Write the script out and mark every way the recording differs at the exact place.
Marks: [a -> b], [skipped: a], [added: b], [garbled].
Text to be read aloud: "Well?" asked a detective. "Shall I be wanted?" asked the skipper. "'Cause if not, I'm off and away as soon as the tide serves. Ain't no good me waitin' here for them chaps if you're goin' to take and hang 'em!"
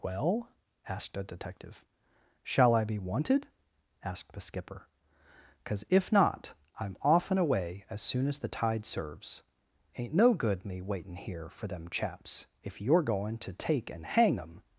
"Well?" asked a detective. "Shall I be wanted?" asked the skipper. "'Cause if not, I'm off and away as soon as the tide serves. Ain't no good me waitin' here for them chaps if you're goin' to take and hang 'em!"